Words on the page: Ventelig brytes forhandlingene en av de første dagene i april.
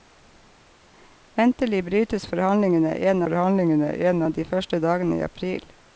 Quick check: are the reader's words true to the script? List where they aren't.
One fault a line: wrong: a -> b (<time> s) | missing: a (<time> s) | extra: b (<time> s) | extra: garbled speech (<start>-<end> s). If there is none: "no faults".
extra: forhandlingene en (3.2 s)